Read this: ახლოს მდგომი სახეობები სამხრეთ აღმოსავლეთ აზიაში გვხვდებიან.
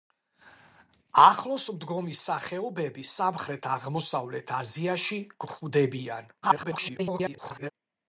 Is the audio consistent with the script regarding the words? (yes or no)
no